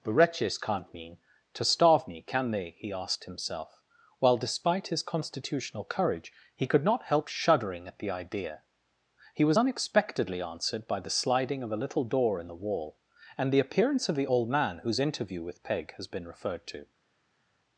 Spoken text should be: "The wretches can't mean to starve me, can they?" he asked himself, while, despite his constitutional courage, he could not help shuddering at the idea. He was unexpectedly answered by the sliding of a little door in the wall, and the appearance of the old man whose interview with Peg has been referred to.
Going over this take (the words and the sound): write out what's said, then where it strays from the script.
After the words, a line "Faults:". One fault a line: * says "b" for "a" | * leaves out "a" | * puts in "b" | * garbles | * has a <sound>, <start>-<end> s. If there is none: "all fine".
"The wretches can't mean to starve me, can they?" he asked himself, while, despite his constitutional courage, he could not help shuddering at the idea. He was unexpectedly answered by the sliding of a little door in the wall, and the appearance of the old man whose interview with Peg has been referred to.
Faults:
all fine